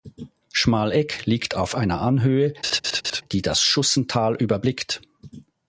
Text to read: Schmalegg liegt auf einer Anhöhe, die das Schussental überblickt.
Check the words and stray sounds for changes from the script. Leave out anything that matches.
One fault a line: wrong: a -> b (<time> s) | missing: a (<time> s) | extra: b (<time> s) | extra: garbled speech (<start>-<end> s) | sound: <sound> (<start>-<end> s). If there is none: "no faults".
sound: laugh (2.6-3.2 s)